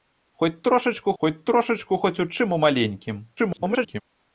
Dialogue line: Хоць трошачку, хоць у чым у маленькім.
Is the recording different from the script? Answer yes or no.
yes